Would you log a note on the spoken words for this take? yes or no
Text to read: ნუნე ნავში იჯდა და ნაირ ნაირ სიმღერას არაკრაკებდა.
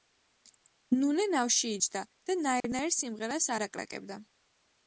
no